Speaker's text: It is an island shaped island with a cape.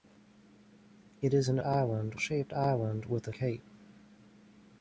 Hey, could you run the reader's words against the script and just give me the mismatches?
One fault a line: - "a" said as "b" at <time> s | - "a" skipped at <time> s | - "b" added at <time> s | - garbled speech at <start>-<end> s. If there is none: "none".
none